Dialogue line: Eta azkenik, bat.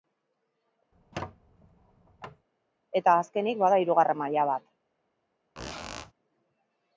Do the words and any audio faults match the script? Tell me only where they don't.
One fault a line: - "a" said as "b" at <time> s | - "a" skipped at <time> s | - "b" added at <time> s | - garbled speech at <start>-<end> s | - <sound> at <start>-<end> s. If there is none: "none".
- squeak at 0.9-2.5 s
- "bada hirugarren maila" added at 3.6 s
- squeak at 5.6-6.1 s